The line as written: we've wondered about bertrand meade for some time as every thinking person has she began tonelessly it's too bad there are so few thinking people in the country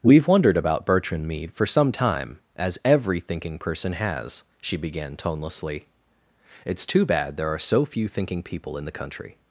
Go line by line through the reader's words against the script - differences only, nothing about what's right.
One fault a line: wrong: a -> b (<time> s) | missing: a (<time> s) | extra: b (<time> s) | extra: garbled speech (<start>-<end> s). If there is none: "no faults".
no faults